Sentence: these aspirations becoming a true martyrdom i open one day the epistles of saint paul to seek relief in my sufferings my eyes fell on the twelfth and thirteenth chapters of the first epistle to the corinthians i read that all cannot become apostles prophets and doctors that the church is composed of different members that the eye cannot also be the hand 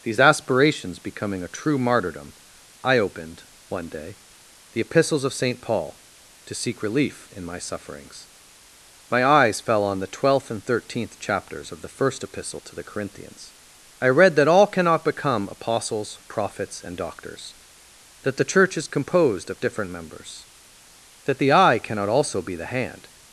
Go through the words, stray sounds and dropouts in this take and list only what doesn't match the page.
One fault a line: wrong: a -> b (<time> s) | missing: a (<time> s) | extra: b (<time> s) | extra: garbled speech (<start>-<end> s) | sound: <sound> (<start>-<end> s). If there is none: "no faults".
wrong: open -> opened (3.0 s)